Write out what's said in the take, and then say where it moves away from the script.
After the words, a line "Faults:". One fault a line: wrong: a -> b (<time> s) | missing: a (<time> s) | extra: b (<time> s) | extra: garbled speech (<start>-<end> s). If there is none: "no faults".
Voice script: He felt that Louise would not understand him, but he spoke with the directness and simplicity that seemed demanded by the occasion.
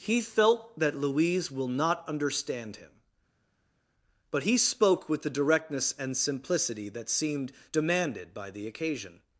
He felt that Louise will not understand him, but he spoke with the directness and simplicity that seemed demanded by the occasion.
Faults:
wrong: would -> will (1.5 s)